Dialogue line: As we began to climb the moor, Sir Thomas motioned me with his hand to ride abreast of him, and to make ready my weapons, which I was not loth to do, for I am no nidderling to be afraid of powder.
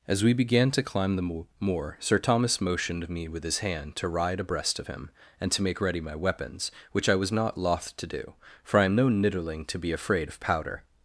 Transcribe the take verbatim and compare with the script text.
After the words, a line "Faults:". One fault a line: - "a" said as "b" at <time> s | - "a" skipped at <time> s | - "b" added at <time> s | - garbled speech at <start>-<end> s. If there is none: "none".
As we began to climb the moor, Sir Thomas motioned me with his hand to ride abreast of him, and to make ready my weapons, which I was not loth to do, for I am no nidderling to be afraid of powder.
Faults:
none